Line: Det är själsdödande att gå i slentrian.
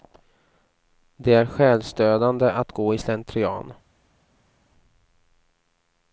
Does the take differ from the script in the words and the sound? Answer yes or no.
no